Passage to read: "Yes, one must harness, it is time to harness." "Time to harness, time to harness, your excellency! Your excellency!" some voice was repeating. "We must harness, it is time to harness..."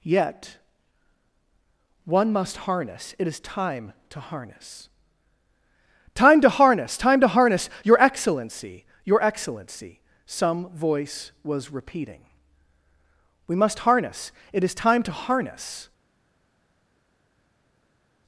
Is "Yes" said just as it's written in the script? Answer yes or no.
no